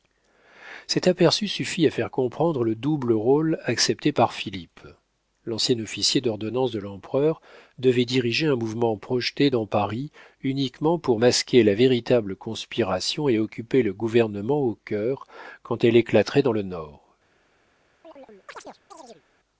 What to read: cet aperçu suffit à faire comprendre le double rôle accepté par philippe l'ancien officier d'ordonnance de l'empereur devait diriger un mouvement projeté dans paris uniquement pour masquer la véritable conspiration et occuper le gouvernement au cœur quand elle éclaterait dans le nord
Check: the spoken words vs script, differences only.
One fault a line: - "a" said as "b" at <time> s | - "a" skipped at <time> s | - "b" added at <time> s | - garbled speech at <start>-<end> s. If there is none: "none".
none